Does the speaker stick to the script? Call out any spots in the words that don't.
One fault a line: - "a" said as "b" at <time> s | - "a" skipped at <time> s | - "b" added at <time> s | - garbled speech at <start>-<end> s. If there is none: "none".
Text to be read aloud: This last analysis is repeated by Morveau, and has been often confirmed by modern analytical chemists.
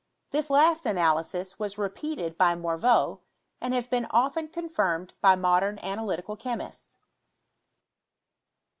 - "is" said as "was" at 1.6 s